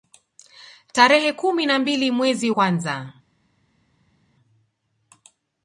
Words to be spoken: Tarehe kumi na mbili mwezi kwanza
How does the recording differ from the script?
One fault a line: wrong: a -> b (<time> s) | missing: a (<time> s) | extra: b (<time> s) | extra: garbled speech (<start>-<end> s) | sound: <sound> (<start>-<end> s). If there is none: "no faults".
no faults